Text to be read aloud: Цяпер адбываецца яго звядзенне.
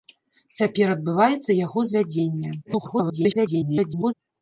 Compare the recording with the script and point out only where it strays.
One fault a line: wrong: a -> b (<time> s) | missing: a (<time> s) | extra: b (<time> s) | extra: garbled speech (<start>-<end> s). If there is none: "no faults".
extra: garbled speech (2.6-4.1 s)